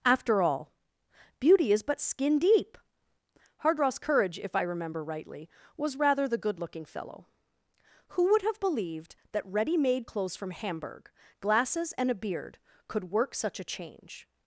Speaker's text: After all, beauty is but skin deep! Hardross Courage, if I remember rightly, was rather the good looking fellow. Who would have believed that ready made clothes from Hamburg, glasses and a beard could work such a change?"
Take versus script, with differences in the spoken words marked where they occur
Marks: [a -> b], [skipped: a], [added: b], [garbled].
After all, beauty is but skin deep! Hardross Courage, if I remember rightly, was rather the good looking fellow. Who would have believed that ready made clothes from Hamburg, glasses and a beard could work such a change?"